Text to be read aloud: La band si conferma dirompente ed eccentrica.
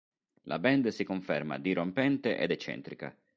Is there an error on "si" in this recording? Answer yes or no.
no